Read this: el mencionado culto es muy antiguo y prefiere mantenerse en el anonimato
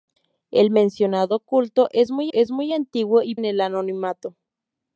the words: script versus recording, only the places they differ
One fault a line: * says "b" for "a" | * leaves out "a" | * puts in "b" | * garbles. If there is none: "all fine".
* puts in "es muy"
* leaves out "prefiere mantenerse"